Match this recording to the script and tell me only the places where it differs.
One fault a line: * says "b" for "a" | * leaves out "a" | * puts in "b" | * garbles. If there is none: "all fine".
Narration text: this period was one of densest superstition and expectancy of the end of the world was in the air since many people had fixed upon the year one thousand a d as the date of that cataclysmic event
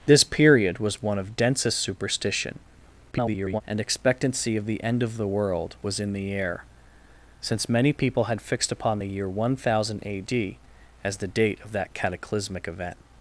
* garbles